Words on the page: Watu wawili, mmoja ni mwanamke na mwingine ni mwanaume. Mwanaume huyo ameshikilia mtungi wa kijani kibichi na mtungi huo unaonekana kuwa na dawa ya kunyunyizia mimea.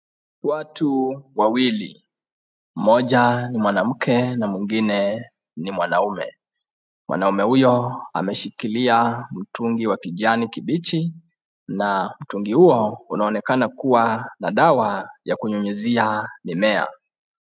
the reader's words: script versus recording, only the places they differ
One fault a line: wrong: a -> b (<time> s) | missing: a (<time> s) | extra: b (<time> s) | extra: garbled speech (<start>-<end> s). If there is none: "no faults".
no faults